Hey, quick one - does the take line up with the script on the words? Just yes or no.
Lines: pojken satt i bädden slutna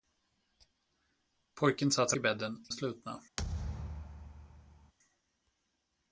yes